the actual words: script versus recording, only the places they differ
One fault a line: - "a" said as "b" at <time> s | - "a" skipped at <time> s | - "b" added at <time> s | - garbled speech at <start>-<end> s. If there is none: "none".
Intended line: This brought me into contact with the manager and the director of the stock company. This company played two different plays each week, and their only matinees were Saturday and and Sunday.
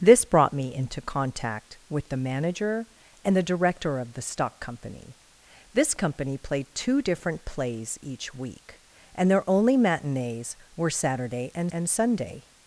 none